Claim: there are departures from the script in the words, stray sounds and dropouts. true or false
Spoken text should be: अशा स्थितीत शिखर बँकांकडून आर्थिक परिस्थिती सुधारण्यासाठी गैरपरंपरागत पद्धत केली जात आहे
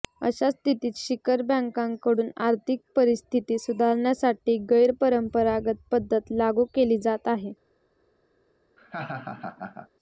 true